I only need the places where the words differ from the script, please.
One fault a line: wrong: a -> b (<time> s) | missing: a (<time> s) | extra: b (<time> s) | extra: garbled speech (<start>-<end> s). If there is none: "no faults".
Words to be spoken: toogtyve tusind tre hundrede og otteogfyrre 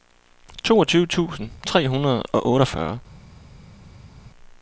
no faults